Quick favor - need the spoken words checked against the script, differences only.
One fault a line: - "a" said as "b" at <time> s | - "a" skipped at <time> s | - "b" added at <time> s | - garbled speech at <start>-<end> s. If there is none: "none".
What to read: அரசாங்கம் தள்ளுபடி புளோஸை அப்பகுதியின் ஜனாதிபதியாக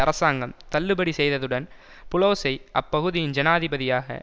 - "செய்ததுடன்" added at 1.1 s